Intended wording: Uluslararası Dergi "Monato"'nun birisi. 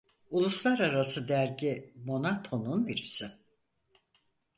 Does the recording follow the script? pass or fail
pass